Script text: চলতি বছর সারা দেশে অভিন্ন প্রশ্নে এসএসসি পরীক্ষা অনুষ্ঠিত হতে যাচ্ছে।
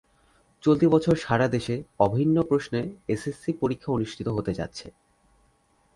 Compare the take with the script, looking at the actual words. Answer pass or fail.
pass